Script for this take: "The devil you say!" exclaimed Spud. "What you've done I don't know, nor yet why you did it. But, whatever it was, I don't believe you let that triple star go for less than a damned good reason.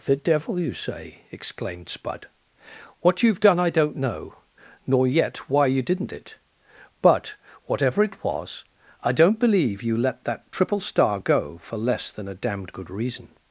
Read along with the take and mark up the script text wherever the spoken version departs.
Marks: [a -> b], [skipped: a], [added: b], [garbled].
"The devil you say!" exclaimed Spud. "What you've done I don't know, nor yet why you [did -> didn't] it. But, whatever it was, I don't believe you let that triple star go for less than a damned good reason.